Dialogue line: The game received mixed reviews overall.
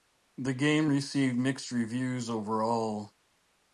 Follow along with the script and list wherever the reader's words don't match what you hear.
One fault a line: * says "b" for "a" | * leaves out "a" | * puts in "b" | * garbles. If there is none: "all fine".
all fine